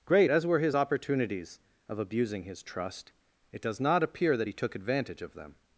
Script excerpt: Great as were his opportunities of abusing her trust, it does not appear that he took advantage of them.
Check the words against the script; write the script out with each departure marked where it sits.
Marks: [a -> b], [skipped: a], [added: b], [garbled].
Great as were his opportunities of abusing [her -> his] trust, it does not appear that he took advantage of them.